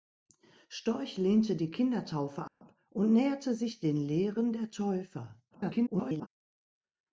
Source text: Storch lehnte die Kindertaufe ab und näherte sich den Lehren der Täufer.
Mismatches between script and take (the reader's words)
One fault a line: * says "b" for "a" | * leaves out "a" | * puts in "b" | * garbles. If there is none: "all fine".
* garbles